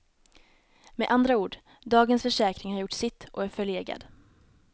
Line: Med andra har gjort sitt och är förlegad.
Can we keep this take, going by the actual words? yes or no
no